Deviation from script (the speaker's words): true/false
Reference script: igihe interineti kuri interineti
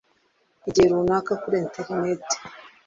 true